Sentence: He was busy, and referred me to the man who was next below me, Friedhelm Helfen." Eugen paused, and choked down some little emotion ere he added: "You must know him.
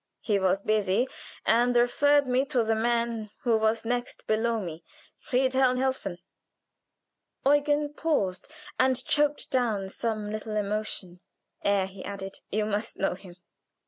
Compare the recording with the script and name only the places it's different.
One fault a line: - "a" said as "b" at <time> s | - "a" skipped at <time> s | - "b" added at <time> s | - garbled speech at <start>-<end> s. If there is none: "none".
none